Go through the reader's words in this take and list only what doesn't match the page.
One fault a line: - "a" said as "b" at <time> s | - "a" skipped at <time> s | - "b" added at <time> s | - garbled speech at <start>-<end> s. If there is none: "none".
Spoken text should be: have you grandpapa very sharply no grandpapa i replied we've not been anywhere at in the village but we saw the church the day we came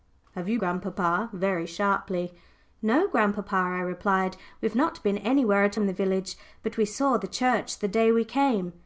none